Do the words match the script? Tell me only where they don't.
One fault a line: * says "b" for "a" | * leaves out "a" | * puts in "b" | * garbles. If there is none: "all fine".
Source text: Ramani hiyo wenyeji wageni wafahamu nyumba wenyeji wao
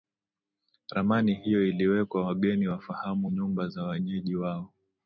* says "iliwekwa" for "wenyeji"
* puts in "za"